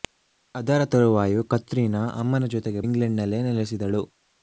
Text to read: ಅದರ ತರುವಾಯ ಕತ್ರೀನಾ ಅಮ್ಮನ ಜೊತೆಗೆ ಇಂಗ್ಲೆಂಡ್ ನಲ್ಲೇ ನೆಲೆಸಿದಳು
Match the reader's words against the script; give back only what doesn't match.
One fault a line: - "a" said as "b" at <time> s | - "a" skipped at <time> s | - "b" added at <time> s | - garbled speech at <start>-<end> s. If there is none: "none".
none